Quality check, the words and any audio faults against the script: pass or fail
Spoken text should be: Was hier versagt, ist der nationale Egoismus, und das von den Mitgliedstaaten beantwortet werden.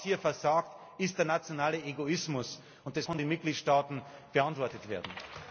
pass